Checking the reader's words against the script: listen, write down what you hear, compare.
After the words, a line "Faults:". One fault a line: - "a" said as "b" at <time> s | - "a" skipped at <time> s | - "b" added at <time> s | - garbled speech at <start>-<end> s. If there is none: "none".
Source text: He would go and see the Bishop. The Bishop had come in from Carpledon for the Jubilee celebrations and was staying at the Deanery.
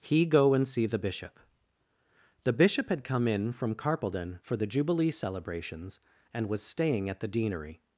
He go and see the Bishop. The Bishop had come in from Carpledon for the Jubilee celebrations and was staying at the Deanery.
Faults:
- "would" skipped at 0.2 s